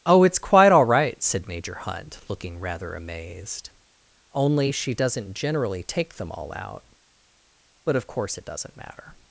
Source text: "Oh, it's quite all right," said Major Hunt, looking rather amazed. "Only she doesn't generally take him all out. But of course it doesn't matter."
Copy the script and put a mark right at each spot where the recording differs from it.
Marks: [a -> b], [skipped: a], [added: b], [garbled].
"Oh, it's quite all right," said Major Hunt, looking rather amazed. "Only she doesn't generally take [him -> them] all out. But of course it doesn't matter."